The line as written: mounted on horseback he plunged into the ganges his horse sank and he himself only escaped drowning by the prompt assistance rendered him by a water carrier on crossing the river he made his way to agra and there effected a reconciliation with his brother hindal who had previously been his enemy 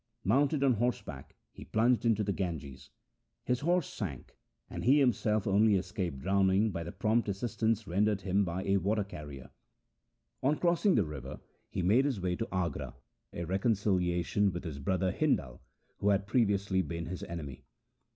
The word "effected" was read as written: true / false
false